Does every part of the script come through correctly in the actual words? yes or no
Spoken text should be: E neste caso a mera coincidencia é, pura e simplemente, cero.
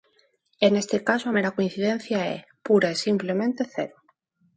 yes